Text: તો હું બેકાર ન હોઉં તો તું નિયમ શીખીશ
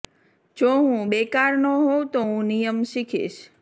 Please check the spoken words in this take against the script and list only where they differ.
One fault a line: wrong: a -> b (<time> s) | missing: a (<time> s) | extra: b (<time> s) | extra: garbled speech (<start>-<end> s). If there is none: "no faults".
wrong: તો -> જો (0.6 s)
wrong: તું -> હું (2.2 s)